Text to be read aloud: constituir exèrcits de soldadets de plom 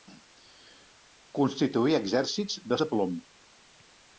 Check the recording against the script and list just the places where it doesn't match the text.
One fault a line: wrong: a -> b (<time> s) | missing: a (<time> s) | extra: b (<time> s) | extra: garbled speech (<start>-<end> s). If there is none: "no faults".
missing: soldadets (2.8 s)